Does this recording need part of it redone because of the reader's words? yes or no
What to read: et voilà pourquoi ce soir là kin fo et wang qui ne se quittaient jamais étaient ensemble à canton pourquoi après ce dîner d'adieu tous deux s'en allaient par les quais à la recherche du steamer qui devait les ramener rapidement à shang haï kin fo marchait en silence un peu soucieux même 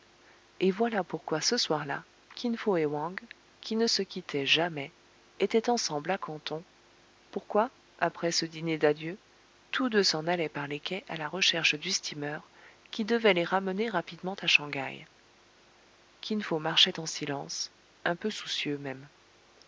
no